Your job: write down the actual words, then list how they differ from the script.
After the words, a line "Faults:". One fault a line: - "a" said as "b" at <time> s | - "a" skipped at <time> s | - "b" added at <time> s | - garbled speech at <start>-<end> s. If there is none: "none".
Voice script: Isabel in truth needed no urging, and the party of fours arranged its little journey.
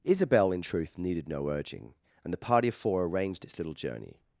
Isabel in truth needed no urging, and the party of four arranged its little journey.
Faults:
- "fours" said as "four" at 2.8 s